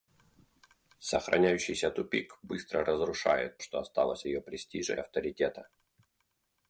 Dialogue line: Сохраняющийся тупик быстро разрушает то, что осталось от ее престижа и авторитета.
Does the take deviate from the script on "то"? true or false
true